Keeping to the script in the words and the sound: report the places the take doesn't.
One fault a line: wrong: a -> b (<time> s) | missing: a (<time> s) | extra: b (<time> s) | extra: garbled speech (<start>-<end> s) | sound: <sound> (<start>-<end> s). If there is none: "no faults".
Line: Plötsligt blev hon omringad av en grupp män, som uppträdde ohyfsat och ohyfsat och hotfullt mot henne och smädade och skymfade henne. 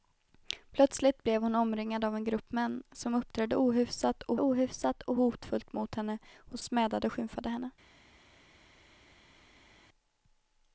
no faults